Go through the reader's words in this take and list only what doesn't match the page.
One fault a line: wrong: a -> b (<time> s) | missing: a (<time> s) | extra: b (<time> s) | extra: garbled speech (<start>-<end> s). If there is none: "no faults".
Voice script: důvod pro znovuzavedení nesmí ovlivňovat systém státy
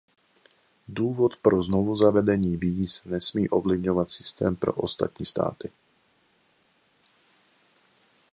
extra: víz (2.6 s)
extra: pro ostatní (4.6 s)